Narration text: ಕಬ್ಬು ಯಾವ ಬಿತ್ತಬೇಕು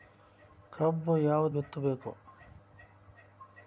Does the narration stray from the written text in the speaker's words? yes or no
no